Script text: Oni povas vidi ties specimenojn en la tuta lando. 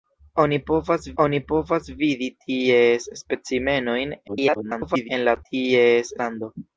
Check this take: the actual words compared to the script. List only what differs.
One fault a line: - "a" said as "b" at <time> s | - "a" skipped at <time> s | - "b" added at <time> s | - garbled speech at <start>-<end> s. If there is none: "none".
- "oni povas" added at 1.2 s
- garbled speech at 4.3-5.1 s
- "tuta" said as "ties" at 5.5 s